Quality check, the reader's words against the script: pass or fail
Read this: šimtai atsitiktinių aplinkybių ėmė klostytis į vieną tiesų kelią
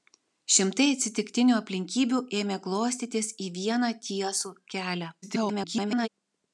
fail